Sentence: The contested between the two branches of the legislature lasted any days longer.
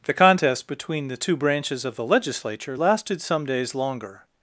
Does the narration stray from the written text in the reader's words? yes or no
yes